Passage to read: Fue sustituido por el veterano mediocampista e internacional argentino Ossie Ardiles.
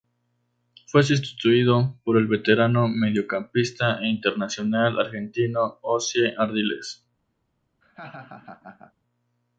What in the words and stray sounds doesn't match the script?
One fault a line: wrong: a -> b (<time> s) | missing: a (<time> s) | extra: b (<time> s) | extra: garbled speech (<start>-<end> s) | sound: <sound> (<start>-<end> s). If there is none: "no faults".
sound: laugh (7.8-8.9 s)